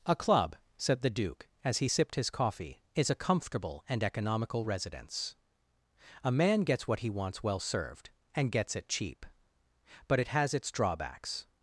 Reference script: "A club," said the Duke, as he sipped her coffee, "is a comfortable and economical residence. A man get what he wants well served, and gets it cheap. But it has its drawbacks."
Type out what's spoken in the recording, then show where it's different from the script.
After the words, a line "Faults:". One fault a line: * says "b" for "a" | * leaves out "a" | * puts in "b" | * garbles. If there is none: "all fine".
"A club," said the Duke, as he sipped his coffee, "is a comfortable and economical residence. A man gets what he wants well served, and gets it cheap. But it has its drawbacks."
Faults:
* says "his" for "her"
* says "gets" for "get"